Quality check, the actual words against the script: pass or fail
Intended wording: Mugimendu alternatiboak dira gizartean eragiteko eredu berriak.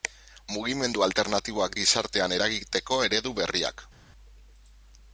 fail